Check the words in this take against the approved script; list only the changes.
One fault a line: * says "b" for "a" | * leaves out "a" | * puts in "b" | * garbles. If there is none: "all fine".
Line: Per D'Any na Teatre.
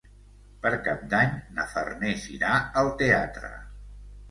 * puts in "Cap"
* puts in "Farners irà al"